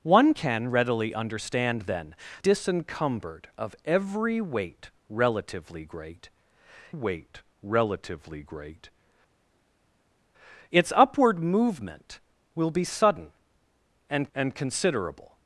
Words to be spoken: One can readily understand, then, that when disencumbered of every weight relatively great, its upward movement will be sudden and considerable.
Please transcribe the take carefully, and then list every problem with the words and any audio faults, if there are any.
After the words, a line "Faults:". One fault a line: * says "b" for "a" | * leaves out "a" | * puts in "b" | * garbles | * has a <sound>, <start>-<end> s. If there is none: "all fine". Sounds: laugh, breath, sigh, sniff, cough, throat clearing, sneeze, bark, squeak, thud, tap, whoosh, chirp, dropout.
One can readily understand, then, disencumbered of every weight relatively great weight relatively great, its upward movement will be sudden and and considerable.
Faults:
* leaves out "that when"
* puts in "weight relatively great"
* puts in "and"